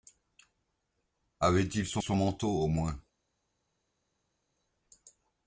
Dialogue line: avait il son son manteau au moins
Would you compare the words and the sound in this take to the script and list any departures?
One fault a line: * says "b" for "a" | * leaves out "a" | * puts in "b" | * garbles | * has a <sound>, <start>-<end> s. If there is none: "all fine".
all fine